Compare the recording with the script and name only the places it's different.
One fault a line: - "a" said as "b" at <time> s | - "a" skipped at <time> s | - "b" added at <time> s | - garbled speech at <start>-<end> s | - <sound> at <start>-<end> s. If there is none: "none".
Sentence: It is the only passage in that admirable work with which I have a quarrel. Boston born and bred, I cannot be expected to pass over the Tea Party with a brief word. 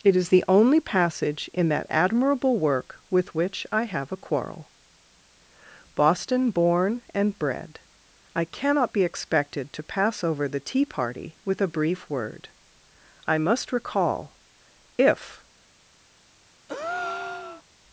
- "I must recall if" added at 13.3 s
- breath at 16.7-17.6 s